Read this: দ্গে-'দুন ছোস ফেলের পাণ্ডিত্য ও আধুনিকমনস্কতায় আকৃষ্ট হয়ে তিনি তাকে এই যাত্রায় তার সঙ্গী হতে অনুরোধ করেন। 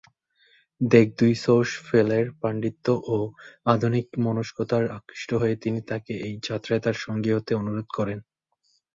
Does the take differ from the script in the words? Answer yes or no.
no